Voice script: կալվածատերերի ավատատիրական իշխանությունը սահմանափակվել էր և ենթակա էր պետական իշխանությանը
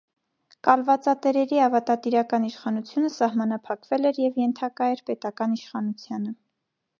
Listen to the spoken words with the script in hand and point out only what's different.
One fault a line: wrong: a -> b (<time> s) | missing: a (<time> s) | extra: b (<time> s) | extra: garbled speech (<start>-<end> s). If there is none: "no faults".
no faults